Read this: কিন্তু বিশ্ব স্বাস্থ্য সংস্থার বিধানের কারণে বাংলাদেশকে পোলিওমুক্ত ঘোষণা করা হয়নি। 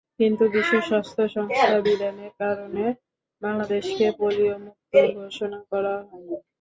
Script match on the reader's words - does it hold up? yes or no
yes